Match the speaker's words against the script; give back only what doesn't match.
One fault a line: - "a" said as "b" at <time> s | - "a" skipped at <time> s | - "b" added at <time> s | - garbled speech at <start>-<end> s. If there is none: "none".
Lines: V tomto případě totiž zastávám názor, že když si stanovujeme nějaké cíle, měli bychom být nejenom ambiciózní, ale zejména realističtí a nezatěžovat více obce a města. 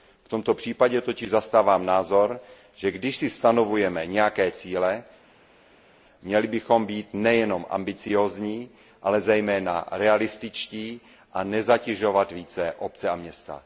none